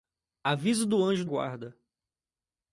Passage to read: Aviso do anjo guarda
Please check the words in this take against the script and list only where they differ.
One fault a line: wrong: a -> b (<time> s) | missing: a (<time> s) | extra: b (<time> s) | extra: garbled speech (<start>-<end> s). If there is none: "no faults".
no faults